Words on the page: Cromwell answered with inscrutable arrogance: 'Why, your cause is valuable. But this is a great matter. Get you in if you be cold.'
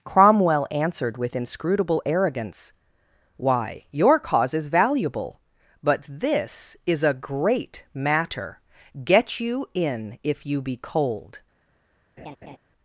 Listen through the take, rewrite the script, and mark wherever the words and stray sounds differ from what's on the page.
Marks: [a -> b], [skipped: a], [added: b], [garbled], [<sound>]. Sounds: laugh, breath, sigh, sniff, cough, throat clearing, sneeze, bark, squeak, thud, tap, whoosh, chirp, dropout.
Cromwell answered with inscrutable arrogance: 'Why, your cause is valuable. But this is a great matter. Get you in if you be cold.' [laugh]